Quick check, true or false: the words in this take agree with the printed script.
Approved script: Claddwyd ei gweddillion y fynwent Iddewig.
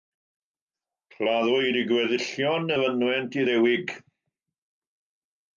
true